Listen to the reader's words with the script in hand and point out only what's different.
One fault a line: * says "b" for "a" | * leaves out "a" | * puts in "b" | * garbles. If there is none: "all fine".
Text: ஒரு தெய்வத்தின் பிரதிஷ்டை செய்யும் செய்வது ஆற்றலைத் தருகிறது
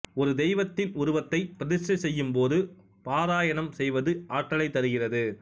* puts in "உருவத்தை"
* puts in "போது பாராயணம்"